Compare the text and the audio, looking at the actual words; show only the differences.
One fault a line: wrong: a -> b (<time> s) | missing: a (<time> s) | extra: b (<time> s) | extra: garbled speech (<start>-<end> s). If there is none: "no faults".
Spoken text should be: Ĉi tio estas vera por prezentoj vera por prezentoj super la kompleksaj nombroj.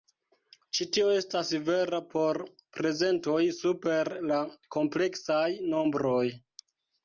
missing: vera por prezentoj (3.4 s)